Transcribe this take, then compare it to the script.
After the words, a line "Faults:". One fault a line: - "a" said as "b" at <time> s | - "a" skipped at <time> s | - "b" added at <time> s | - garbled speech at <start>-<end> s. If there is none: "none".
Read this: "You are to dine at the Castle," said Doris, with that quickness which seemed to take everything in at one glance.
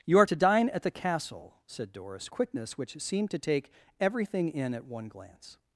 "You are to dine at the Castle," said Doris, quickness which seemed to take everything in at one glance.
Faults:
- "with that" skipped at 2.3 s